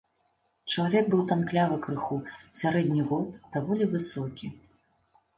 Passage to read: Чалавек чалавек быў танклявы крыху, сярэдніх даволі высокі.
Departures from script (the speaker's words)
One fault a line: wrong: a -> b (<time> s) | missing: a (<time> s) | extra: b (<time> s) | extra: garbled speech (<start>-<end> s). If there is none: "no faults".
missing: чалавек (1.1 s)
extra: год (3.1 s)